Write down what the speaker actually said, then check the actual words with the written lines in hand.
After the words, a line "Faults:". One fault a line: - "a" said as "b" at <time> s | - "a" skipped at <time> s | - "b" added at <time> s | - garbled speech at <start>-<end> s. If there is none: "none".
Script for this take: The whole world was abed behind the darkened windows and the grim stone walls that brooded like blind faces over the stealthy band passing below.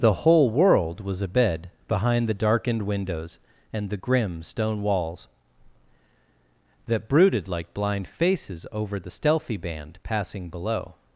The whole world was abed behind the darkened windows and the grim stone walls that brooded like blind faces over the stealthy band passing below.
Faults:
none